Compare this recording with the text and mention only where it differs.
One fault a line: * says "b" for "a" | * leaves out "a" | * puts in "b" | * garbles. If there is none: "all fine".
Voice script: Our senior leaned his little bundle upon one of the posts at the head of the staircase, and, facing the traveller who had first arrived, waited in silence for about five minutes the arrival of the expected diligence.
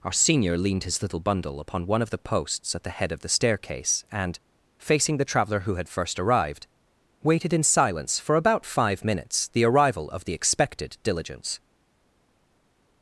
all fine